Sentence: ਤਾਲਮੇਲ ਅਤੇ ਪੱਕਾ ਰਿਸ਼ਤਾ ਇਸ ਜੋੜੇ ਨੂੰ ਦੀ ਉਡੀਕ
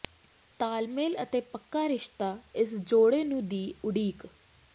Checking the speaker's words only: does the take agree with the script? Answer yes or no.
yes